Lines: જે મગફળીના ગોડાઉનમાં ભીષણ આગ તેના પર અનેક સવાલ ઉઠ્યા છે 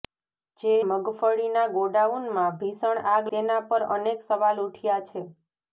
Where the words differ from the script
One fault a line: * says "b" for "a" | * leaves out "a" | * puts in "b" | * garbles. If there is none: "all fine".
all fine